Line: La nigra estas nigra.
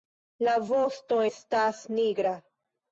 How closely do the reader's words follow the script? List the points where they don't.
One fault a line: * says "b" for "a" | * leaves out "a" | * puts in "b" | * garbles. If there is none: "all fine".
* says "vosto" for "nigra"